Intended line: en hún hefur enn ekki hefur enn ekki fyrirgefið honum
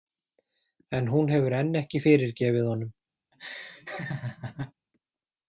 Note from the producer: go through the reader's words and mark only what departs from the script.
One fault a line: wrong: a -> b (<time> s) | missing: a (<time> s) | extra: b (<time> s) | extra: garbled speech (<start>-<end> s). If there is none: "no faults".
missing: hefur enn ekki (2.0 s)